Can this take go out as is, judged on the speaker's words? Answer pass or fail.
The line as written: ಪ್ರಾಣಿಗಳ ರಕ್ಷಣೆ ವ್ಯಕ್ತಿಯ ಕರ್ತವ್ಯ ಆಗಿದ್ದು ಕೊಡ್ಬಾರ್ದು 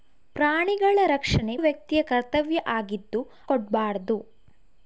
pass